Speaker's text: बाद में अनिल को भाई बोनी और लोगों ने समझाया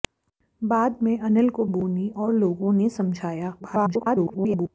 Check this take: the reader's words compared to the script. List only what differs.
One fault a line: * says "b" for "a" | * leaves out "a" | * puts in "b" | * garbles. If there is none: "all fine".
* leaves out "भाई"
* garbles